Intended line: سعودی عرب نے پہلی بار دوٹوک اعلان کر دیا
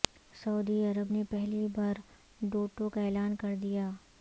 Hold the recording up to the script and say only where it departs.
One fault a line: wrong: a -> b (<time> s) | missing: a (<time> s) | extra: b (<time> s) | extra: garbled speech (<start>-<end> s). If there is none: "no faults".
no faults